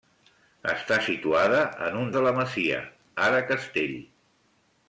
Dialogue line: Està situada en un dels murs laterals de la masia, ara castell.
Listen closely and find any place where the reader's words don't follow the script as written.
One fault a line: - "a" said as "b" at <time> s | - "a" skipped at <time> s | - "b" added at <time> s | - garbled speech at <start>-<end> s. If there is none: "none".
- "dels murs laterals" skipped at 2.1 s